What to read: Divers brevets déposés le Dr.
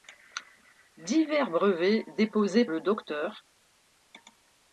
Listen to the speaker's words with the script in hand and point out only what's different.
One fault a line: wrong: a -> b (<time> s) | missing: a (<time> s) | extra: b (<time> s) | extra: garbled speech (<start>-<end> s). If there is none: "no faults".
no faults